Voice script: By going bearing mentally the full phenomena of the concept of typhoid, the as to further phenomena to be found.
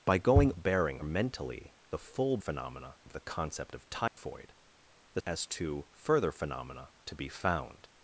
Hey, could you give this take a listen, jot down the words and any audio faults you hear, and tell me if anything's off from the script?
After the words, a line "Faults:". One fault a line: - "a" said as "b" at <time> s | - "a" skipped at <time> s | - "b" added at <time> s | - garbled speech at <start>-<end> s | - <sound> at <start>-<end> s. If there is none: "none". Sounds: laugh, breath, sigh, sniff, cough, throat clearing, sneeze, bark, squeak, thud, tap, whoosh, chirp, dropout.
By going bearing mentally the full phenomena of the concept of typhoid, the as to further phenomena to be found.
Faults:
- dropout at 4.1-4.2 s